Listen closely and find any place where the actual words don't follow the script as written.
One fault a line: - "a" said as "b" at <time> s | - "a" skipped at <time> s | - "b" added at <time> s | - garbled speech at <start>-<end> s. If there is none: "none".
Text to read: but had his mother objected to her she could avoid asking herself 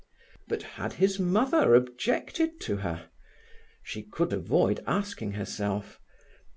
none